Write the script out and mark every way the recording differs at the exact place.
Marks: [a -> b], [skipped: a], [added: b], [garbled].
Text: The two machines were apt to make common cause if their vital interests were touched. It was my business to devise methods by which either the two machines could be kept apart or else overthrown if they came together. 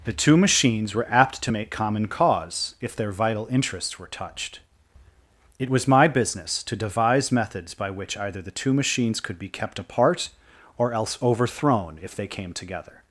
The two machines were apt to make common cause if their vital interests were touched. It was my business to devise methods by which either the two machines could be kept apart or else overthrown if they came together.